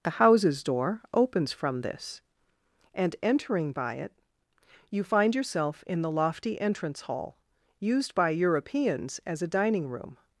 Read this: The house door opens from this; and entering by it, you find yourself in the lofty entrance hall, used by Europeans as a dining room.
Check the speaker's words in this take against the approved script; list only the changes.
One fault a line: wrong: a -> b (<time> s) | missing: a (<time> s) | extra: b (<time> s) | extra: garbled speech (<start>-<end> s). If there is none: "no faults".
wrong: house -> houses (0.1 s)